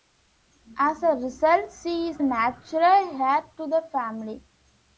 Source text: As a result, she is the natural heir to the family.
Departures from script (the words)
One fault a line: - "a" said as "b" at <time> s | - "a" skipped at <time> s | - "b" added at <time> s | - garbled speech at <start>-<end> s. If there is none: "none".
- "the" skipped at 2.2 s